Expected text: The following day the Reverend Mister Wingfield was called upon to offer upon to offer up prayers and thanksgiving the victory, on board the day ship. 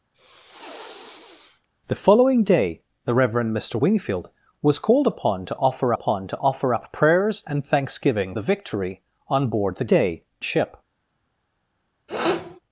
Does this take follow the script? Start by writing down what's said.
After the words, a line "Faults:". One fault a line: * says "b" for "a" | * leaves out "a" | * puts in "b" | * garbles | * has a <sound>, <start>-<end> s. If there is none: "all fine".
The following day the Reverend Mister Wingfield was called upon to offer upon to offer up prayers and thanksgiving the victory, on board the day ship.
Faults:
* has a sniff, 0.1-1.7 s
* has a sniff, 12.1-12.6 s